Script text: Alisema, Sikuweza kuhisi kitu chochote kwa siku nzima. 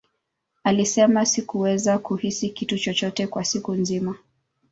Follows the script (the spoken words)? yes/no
yes